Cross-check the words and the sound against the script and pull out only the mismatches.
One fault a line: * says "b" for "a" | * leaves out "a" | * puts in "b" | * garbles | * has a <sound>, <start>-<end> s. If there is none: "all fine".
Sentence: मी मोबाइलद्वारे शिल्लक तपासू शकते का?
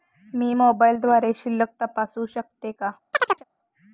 * has a chirp, 3.1-3.4 s